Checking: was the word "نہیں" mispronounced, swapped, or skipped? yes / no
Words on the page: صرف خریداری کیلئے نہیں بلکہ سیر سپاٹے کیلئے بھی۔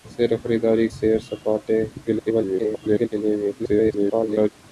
yes